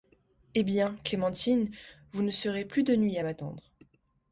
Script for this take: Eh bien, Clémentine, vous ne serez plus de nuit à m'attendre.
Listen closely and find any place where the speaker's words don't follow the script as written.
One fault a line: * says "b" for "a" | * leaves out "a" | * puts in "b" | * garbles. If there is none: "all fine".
all fine